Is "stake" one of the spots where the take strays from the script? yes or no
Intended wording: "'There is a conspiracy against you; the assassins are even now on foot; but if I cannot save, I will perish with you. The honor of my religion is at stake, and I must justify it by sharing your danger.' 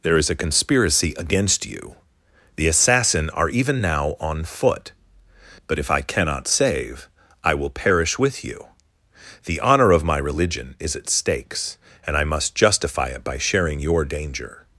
yes